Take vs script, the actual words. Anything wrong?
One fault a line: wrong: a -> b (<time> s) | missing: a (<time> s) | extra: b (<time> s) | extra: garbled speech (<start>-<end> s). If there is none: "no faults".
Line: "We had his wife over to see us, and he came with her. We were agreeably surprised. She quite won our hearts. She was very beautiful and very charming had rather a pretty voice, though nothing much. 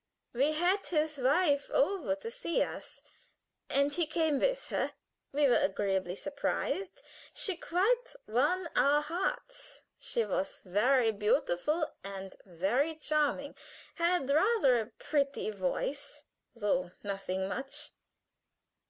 no faults